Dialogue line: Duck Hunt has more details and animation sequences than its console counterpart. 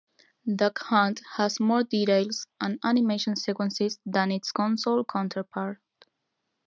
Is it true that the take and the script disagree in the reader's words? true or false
false